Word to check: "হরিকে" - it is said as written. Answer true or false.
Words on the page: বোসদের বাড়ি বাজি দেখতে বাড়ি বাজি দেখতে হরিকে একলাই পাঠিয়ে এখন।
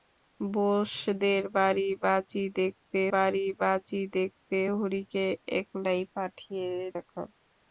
true